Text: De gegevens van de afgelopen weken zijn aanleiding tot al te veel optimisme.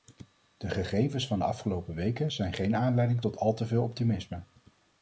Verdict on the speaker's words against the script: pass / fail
fail